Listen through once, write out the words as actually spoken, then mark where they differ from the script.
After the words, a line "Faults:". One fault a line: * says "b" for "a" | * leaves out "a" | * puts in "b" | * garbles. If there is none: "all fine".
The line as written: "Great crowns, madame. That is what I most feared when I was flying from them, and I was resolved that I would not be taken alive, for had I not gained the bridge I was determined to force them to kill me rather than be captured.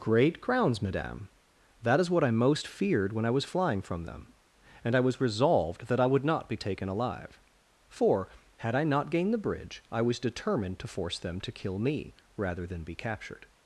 "Great crowns, madame. That is what I most feared when I was flying from them, and I was resolved that I would not be taken alive, for had I not gained the bridge I was determined to force them to kill me rather than be captured.
Faults:
all fine